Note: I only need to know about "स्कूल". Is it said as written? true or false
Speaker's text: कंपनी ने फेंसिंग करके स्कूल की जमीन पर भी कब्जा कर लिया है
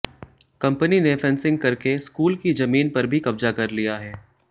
true